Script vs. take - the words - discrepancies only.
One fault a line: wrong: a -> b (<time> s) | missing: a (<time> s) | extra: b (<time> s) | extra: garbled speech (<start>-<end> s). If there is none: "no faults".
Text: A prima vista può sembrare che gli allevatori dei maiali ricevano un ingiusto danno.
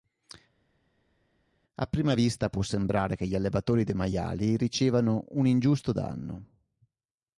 no faults